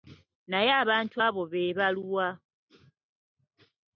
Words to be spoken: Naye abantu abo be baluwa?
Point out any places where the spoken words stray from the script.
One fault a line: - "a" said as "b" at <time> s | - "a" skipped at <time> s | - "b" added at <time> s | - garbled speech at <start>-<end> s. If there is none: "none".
none